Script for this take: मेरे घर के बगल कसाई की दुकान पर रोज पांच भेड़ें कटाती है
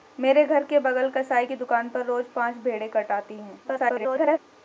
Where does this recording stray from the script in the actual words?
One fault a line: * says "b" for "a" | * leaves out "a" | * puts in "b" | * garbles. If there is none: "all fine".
* garbles